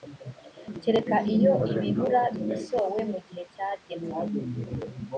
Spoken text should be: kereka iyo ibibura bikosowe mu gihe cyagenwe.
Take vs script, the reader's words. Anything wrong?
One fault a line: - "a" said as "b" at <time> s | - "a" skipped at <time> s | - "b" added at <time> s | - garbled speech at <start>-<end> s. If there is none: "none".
none